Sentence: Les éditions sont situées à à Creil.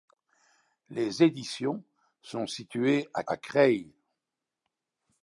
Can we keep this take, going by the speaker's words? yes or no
yes